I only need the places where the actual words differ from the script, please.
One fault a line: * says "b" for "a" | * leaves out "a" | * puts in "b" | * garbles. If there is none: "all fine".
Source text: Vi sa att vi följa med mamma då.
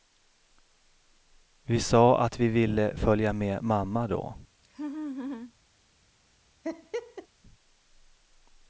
* puts in "ville"